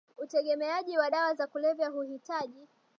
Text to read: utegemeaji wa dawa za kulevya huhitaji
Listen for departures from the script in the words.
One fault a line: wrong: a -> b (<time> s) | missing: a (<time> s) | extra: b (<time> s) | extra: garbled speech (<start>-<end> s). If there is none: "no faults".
no faults